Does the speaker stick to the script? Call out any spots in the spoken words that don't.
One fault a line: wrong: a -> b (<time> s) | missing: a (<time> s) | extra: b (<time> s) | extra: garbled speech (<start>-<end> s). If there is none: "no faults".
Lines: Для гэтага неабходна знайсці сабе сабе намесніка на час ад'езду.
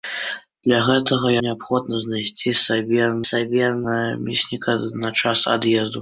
no faults